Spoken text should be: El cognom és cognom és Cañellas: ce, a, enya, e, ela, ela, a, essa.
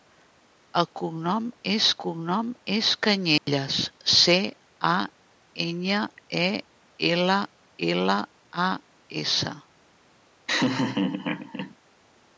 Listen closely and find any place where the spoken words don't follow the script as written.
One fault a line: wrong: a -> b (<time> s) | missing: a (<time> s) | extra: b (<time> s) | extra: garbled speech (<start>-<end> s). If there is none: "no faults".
no faults